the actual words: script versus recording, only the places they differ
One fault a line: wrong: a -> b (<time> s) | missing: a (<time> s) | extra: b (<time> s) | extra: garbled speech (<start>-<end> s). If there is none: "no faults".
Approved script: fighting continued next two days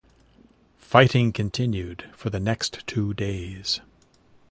extra: for the (2.2 s)